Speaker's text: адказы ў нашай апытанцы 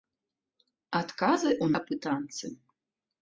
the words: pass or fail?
fail